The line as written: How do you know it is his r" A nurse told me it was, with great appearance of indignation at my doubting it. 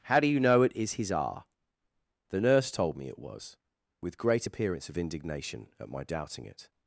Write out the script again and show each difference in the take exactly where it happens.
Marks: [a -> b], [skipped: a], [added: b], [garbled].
How do you know it is his r" [A -> The] nurse told me it was, with great appearance of indignation at my doubting it.